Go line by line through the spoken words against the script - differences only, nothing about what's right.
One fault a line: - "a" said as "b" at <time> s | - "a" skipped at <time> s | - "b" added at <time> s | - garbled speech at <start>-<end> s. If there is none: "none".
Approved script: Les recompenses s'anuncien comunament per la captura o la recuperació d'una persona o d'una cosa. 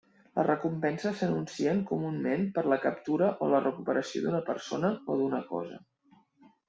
none